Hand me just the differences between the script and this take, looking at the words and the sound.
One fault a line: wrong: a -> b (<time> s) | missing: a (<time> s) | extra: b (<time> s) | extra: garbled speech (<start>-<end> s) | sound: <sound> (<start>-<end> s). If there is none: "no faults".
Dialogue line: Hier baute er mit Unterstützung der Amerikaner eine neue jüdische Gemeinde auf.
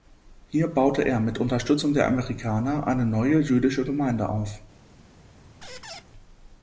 sound: squeak (5.6-6.0 s)